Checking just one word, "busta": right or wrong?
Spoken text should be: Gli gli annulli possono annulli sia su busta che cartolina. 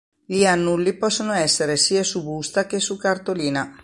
right